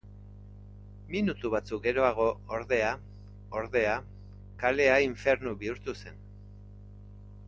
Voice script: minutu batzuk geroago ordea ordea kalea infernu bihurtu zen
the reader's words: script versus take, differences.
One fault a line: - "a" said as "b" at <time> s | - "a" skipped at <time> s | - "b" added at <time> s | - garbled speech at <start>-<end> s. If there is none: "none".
none